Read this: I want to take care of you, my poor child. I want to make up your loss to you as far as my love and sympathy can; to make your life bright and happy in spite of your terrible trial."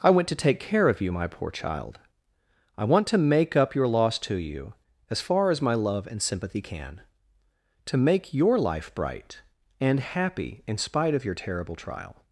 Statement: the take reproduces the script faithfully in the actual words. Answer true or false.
false